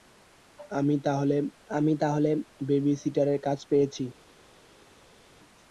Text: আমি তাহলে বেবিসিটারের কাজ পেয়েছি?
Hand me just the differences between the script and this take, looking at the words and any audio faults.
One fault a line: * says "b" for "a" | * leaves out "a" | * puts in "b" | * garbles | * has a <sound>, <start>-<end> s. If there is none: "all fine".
* puts in "আমি তাহলে"